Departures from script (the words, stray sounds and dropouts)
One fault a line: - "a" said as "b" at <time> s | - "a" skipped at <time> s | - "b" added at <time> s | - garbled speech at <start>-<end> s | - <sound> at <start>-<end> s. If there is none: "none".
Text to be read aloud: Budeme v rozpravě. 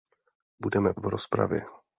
none